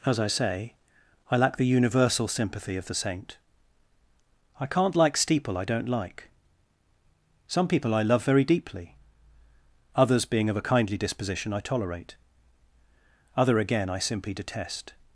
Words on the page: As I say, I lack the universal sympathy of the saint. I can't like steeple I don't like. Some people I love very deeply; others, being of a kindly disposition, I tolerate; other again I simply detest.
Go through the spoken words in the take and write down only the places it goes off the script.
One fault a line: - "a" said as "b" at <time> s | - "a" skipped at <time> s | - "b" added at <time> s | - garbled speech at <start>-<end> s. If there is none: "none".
none